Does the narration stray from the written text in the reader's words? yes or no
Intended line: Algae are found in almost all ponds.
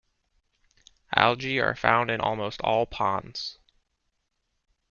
no